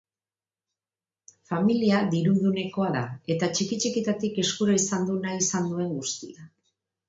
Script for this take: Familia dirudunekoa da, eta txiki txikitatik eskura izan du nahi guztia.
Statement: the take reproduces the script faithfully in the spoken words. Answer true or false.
false